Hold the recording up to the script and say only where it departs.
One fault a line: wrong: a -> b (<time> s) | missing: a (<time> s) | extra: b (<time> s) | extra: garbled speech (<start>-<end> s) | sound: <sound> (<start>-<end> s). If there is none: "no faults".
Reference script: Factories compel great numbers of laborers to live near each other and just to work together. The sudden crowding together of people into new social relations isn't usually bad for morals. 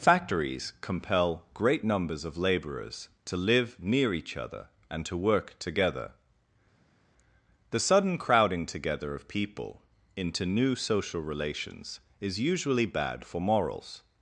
missing: just (5.0 s)
wrong: isn't -> is (12.2 s)